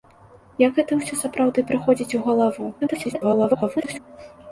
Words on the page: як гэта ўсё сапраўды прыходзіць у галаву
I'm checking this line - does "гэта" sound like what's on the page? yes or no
yes